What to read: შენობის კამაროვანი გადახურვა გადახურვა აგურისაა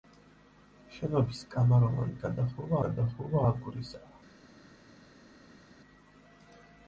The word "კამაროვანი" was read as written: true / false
true